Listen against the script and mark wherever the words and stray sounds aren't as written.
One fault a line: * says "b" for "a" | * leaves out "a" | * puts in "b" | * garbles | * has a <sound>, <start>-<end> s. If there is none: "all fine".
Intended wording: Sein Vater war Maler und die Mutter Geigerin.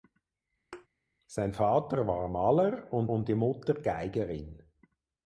* has a thud, 0.7-0.9 s
* puts in "und"